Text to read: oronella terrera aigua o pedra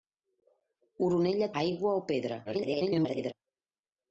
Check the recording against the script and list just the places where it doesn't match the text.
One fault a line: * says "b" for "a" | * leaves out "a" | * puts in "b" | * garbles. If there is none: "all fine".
* leaves out "terrera"
* garbles